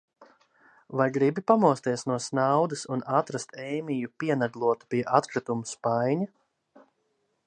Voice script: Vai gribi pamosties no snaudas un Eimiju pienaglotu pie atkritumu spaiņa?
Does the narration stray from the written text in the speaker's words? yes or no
yes